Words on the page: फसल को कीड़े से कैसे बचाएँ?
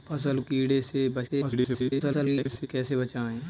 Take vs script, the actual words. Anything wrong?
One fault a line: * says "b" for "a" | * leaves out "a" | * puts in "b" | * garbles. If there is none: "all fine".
* leaves out "को"
* garbles